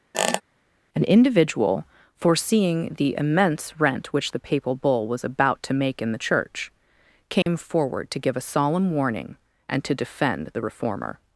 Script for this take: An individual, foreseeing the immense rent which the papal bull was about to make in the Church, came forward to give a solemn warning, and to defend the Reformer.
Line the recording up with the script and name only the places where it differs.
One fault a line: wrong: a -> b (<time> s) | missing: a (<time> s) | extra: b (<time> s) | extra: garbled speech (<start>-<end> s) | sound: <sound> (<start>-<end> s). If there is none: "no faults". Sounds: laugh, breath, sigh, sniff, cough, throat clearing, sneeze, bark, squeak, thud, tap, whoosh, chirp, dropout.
sound: squeak (0.1-0.4 s)
sound: dropout (7.4-7.5 s)